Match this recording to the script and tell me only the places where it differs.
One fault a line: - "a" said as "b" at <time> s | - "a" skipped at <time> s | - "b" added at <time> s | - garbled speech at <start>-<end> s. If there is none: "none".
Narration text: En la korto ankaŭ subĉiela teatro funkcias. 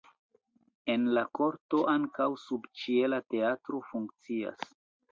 none